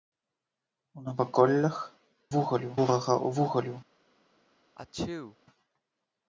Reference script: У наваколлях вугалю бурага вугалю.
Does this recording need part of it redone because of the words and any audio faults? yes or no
yes